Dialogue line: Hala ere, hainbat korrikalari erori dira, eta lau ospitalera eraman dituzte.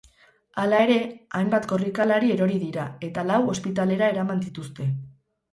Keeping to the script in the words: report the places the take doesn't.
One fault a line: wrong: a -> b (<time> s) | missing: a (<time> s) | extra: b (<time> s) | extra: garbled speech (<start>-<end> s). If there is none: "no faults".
no faults